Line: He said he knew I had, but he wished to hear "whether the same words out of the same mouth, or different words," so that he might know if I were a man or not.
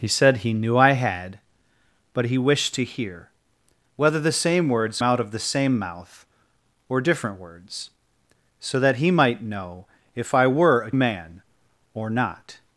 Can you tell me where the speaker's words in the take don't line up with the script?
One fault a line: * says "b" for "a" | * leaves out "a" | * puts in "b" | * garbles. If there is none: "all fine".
all fine